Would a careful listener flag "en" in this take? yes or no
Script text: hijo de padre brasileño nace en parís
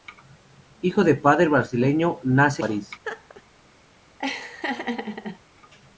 yes